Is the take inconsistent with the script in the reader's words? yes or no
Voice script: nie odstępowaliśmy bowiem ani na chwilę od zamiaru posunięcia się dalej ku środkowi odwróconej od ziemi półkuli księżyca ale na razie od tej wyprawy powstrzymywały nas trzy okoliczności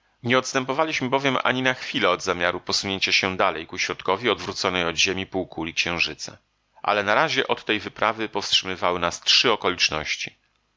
no